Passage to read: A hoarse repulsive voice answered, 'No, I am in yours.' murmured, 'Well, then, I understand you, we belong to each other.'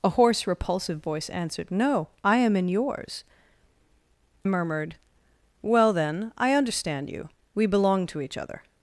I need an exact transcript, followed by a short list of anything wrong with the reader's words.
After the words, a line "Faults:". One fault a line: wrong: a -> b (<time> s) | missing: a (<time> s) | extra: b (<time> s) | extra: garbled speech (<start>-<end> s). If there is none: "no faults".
A hoarse repulsive voice answered, 'No, I am in yours.' murmured, 'Well, then, I understand you, we belong to each other.'
Faults:
no faults